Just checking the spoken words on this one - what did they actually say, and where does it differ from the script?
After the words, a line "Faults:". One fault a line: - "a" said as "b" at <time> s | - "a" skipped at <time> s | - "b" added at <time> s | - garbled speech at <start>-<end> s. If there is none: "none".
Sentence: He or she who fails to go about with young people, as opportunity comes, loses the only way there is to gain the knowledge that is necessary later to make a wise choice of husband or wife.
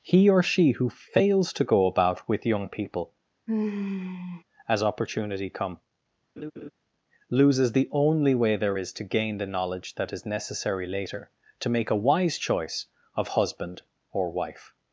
He or she who fails to go about with young people, as opportunity come, loses the only way there is to gain the knowledge that is necessary later to make a wise choice of husband or wife.
Faults:
- "comes" said as "come" at 5.5 s